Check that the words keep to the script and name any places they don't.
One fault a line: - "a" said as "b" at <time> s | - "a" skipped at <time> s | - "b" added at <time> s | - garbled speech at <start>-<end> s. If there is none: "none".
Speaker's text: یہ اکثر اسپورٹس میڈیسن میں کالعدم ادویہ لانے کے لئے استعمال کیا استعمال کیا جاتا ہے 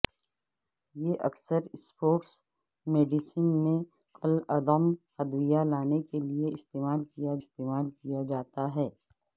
none